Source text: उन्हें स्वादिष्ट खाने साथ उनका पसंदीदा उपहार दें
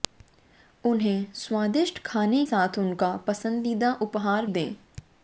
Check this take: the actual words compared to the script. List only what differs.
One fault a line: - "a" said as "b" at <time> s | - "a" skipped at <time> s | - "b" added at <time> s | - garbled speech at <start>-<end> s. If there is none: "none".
none